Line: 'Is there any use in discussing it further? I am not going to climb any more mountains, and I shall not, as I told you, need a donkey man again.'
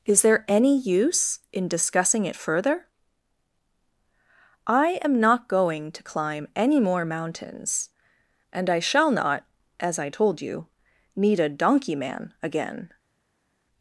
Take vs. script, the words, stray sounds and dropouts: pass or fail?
pass